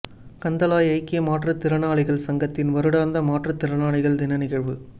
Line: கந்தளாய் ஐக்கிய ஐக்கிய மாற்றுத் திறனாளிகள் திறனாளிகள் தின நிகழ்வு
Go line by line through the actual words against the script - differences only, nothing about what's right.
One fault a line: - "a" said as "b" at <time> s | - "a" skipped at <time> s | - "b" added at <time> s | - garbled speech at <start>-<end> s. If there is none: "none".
- "ஐக்கிய" skipped at 1.2 s
- "சங்கத்தின் வருடாந்த மாற்றுத்" added at 2.2 s